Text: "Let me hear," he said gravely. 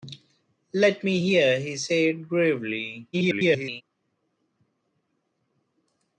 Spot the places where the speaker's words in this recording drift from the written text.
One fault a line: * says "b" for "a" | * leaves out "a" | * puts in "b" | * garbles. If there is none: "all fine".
* garbles